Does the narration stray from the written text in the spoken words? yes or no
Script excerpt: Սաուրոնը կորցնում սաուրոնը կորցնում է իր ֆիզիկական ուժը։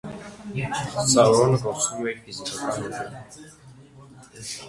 yes